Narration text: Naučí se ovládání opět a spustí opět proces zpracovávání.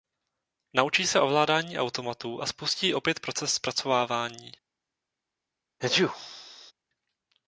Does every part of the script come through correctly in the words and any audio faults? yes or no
no